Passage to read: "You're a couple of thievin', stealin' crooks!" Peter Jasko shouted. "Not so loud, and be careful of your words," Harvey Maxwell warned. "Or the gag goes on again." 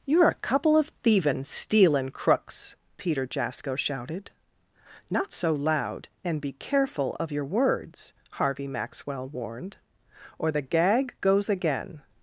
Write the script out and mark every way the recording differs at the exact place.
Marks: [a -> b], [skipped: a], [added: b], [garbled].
"You're a couple of thievin', stealin' crooks!" Peter Jasko shouted. "Not so loud, and be careful of your words," Harvey Maxwell warned. "Or the gag goes [skipped: on] again."